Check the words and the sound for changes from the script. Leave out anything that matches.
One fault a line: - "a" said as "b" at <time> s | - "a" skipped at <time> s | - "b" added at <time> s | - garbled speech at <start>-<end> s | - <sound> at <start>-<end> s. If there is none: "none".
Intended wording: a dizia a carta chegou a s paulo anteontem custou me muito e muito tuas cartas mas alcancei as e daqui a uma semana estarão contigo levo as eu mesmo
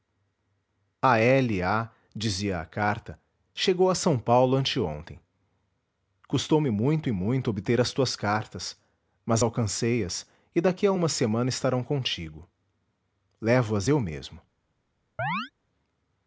- "obter as" added at 7.5 s
- chirp at 15.2-15.5 s